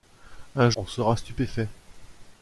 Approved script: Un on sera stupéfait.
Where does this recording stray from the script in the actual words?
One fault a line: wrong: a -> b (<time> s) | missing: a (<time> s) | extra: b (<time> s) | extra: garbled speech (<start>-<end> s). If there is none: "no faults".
no faults